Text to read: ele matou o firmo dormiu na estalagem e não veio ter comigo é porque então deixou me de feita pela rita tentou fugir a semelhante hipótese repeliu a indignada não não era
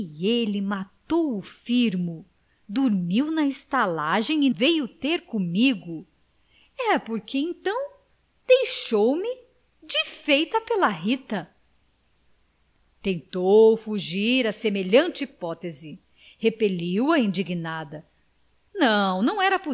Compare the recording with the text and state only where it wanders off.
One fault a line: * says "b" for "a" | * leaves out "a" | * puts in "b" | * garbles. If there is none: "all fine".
* leaves out "não"